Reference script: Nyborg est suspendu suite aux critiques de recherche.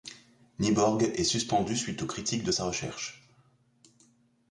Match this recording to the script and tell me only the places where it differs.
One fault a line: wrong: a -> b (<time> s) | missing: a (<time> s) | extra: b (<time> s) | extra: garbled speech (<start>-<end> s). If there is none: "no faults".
extra: sa (2.5 s)